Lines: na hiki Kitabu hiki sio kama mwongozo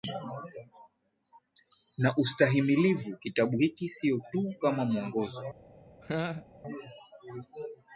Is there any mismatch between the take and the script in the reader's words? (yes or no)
yes